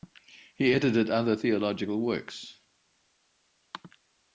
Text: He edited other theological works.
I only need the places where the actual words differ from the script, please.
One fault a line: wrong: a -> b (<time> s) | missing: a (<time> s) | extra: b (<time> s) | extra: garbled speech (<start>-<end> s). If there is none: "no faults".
no faults